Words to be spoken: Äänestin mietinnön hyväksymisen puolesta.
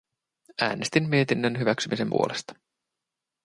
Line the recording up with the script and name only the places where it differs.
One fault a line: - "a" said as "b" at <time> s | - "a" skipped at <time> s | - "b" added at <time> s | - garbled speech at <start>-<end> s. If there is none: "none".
none